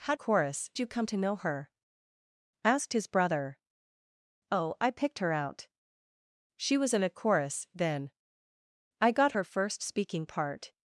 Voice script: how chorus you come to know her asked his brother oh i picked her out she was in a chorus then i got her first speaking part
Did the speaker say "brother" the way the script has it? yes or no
yes